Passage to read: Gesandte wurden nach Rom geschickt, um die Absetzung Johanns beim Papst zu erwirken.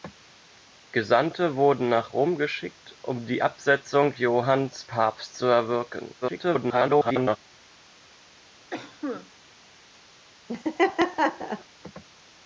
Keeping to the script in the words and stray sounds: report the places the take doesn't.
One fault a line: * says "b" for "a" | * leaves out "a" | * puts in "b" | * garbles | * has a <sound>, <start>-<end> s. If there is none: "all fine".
* leaves out "beim"
* garbles
* has a cough, 8.7-9.3 s
* has a laugh, 10.5-11.6 s